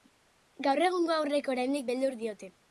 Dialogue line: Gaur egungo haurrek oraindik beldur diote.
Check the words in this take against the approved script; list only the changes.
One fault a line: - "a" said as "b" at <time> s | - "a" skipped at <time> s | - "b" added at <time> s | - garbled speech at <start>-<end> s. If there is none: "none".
none